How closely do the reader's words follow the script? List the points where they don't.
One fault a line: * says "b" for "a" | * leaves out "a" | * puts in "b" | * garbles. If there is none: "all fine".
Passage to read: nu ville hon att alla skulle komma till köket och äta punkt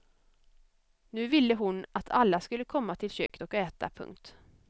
all fine